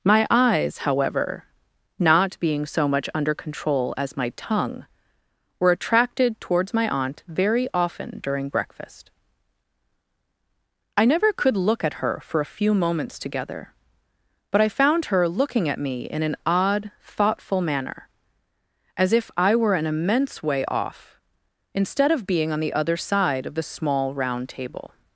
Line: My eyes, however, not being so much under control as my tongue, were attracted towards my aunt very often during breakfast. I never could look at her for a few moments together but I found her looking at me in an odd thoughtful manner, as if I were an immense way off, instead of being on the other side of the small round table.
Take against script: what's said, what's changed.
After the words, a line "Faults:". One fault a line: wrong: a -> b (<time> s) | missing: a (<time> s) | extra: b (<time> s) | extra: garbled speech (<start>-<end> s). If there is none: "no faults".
My eyes, however, not being so much under control as my tongue, were attracted towards my aunt very often during breakfast. I never could look at her for a few moments together but I found her looking at me in an odd thoughtful manner, as if I were an immense way off, instead of being on the other side of the small round table.
Faults:
no faults